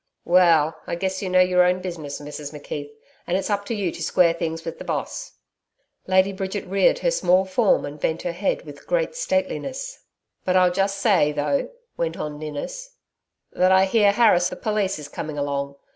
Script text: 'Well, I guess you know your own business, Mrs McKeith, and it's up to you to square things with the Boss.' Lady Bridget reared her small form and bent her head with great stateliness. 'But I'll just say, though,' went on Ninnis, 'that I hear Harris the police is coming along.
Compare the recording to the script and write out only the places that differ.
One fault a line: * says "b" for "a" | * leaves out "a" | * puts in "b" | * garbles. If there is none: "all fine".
all fine